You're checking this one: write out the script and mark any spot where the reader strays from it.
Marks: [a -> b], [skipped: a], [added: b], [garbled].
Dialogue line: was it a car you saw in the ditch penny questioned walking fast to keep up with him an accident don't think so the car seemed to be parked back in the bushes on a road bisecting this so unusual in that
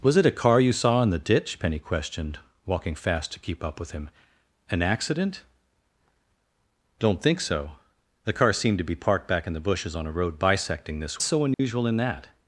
was it a car you saw in the ditch penny questioned walking fast to keep up with him an accident don't think so the car seemed to be parked back in the bushes on a road bisecting this so unusual in that